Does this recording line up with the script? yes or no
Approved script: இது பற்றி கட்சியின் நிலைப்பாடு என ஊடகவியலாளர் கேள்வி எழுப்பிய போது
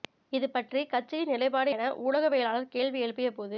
yes